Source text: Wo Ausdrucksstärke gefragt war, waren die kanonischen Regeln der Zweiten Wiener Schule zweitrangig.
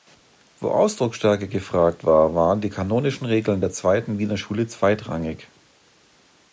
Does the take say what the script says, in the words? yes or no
yes